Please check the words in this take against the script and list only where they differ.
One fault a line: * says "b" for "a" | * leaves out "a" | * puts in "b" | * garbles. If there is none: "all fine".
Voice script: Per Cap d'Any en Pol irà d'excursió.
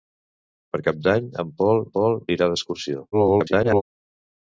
* puts in "Pol"
* garbles